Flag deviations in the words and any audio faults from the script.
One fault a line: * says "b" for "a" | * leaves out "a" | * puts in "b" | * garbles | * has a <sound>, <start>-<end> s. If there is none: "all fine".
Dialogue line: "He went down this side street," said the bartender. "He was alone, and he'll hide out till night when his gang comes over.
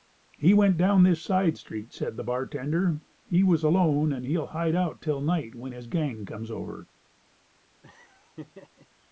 * has a laugh, 7.8-8.9 s